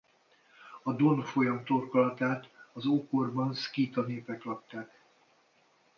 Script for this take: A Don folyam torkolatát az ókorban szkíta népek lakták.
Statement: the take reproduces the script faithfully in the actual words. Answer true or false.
true